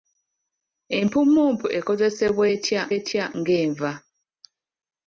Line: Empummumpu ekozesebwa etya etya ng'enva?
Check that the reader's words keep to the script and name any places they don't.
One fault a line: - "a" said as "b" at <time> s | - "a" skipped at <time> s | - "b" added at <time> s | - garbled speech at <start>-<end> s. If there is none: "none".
none